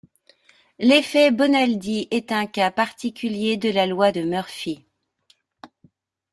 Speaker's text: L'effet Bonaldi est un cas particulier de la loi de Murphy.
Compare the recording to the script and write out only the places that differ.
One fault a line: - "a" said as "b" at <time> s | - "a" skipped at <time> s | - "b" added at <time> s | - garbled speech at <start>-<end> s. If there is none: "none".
none